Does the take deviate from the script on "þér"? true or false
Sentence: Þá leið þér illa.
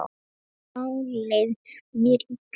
true